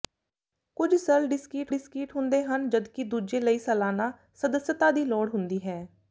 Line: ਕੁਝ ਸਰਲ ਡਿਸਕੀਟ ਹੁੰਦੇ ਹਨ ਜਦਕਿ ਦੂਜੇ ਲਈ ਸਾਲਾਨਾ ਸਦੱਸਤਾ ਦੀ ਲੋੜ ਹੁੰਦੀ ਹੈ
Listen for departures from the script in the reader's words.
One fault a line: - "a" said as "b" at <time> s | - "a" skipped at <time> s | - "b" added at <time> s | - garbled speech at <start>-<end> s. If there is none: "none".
- "ਡਿਸਕੀਟ" added at 1.7 s